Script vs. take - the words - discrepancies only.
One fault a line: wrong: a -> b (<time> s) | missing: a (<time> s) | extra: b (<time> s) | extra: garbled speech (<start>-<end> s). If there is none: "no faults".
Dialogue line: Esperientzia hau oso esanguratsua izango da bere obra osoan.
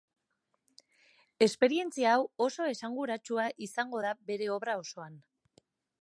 no faults